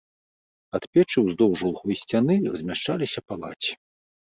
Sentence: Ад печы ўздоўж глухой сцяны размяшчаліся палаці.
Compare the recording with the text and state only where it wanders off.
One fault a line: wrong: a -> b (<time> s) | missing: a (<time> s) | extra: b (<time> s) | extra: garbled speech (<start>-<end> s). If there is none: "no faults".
no faults